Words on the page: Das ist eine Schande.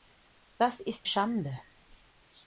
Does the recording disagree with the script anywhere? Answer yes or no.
yes